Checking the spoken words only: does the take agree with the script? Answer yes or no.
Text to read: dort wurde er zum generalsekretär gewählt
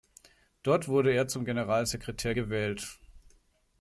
yes